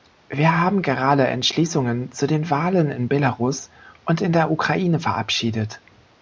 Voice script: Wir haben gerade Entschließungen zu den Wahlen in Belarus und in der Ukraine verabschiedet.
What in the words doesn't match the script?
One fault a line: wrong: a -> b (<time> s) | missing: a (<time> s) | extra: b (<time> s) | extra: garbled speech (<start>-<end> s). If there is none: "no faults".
no faults